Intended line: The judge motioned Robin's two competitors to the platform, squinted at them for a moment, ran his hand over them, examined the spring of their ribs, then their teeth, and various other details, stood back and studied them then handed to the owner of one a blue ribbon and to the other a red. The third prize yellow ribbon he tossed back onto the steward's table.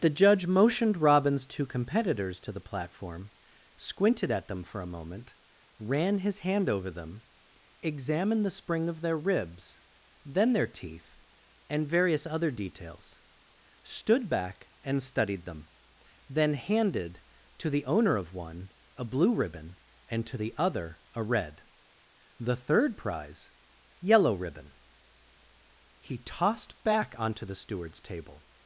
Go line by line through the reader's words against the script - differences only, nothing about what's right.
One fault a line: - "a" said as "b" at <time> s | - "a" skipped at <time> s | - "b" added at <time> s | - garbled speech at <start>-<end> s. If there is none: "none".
none